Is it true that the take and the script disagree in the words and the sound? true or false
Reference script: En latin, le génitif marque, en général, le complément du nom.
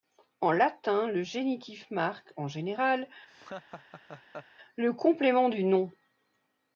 true